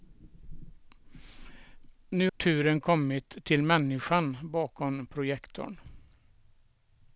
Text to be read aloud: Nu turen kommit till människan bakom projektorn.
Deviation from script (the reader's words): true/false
false